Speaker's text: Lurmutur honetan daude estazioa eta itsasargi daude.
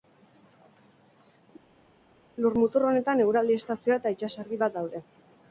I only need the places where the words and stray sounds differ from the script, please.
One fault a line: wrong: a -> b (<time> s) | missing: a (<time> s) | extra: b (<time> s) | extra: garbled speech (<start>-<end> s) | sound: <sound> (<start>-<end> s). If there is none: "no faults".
wrong: daude -> eguraldi (3.3 s)
extra: bat (4.6 s)